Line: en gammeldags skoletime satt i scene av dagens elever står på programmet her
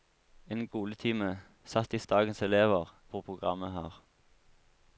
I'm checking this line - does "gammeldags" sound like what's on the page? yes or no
no